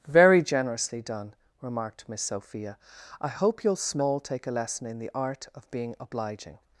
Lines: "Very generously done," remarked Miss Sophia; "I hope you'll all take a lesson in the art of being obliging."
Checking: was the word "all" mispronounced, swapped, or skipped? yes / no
yes